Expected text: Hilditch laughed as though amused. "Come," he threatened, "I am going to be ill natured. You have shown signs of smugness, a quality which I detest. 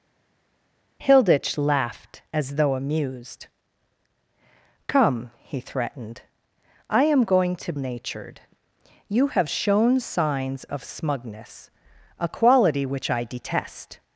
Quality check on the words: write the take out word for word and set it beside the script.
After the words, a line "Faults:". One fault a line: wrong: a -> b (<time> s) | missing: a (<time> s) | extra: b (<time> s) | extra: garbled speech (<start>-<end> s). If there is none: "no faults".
Hilditch laughed as though amused. "Come," he threatened, "I am going to natured. You have shown signs of smugness, a quality which I detest.
Faults:
missing: be ill (7.7 s)